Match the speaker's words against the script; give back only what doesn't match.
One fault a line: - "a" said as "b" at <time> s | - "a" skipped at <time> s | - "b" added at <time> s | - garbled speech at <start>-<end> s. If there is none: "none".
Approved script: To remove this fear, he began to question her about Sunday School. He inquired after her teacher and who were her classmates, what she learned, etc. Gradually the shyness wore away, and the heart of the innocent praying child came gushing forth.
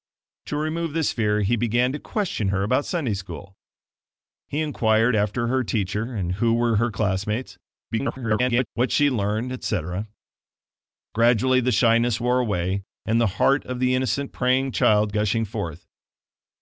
- garbled speech at 7.9-8.7 s
- "came" skipped at 15.1 s